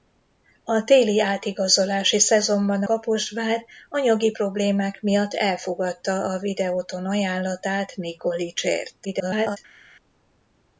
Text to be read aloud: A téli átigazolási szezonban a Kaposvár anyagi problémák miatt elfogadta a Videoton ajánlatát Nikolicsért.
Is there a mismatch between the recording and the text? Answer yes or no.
yes